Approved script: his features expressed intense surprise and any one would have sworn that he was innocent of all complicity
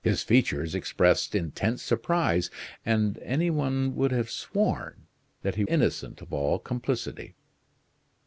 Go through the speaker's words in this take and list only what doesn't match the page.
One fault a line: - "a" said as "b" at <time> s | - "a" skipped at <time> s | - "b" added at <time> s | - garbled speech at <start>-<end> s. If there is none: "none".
- "was" skipped at 5.6 s